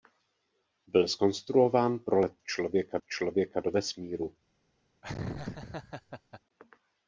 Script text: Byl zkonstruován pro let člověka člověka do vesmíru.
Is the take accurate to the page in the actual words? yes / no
yes